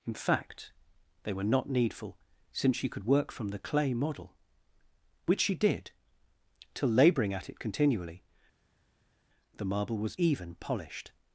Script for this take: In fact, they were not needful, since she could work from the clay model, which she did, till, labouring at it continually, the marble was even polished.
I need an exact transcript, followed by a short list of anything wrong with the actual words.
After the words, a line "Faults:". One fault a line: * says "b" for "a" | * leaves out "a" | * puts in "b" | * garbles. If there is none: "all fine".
In fact, they were not needful, since she could work from the clay model, which she did, till, labouring at it continually, the marble was even polished.
Faults:
all fine